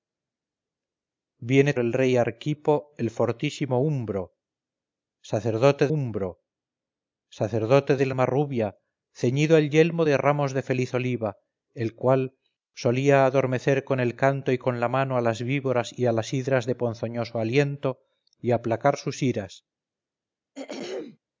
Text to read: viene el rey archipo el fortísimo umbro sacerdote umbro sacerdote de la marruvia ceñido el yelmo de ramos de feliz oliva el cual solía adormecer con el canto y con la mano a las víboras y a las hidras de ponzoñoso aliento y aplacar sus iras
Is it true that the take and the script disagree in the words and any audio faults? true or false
true